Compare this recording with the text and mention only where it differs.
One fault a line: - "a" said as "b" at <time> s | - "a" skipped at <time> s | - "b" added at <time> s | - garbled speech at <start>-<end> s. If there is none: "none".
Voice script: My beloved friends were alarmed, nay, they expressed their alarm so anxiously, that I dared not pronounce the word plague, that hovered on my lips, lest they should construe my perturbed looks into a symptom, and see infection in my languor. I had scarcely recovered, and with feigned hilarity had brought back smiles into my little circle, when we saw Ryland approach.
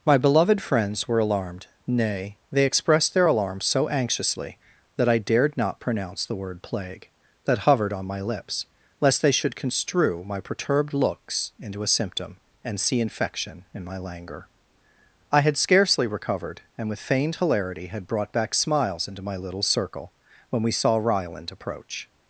none